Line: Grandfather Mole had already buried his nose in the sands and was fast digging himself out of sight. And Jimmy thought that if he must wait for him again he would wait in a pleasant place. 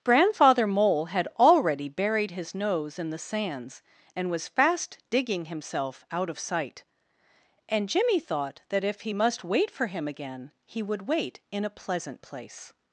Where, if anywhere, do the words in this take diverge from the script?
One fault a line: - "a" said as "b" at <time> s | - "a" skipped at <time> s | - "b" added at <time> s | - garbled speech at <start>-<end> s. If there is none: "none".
none